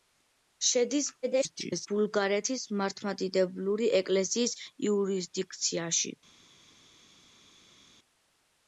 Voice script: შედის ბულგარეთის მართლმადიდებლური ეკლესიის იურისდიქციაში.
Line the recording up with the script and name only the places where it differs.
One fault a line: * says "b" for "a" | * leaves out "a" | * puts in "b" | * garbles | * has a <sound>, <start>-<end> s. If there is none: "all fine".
* garbles